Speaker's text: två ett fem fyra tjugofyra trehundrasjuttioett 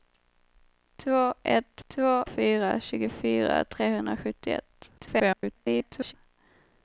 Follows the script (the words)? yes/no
no